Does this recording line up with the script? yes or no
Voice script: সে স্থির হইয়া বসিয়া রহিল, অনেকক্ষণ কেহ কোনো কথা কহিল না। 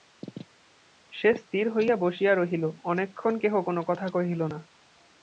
yes